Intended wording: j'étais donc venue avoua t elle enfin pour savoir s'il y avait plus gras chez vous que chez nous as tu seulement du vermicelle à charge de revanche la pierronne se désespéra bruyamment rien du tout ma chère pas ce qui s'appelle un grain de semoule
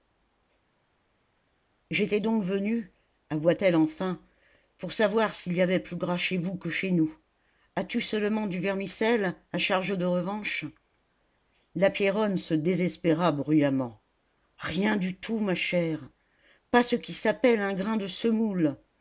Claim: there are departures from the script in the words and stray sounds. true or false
false